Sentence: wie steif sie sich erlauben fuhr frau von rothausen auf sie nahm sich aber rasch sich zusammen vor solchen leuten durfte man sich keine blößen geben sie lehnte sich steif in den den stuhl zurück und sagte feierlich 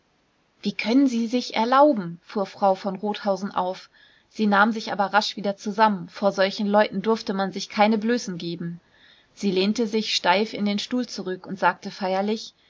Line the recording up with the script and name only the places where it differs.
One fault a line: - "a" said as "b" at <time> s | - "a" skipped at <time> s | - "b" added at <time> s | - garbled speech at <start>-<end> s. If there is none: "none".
- "steif" said as "können" at 0.7 s
- "sich" said as "wieder" at 5.4 s
- "den" skipped at 10.8 s